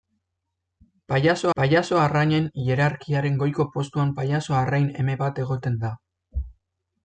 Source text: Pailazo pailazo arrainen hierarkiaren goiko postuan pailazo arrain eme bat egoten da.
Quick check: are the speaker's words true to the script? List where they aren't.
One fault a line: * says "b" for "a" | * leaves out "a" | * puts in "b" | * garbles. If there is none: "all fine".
all fine